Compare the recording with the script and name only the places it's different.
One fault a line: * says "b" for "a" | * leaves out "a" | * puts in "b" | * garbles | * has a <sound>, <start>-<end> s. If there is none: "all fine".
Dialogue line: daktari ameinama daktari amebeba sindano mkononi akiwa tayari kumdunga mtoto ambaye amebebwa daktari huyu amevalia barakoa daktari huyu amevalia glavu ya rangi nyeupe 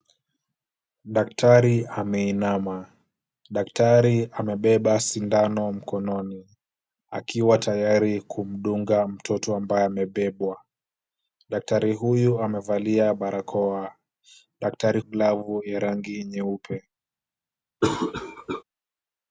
* leaves out "huyu amevalia"
* has a cough, 17.8-18.6 s